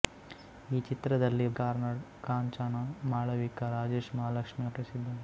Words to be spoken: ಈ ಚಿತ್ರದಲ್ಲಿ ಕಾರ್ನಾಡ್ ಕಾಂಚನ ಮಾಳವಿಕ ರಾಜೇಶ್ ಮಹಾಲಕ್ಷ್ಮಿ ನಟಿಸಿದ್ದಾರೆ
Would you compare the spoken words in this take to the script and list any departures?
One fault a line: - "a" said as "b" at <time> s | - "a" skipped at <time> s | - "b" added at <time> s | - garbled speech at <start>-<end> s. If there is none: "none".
none